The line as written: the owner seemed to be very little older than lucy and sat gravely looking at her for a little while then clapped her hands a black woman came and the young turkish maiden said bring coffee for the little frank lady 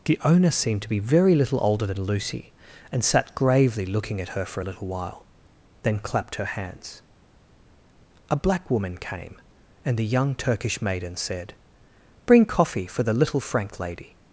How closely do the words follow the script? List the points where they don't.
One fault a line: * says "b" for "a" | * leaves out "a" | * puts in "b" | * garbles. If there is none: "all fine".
all fine